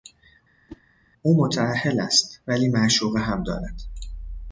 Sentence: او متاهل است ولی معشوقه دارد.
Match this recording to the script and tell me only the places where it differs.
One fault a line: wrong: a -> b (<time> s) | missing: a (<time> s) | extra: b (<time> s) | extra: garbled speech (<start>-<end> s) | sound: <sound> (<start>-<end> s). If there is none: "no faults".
sound: whoosh (0.7-0.8 s)
extra: هم (3.2 s)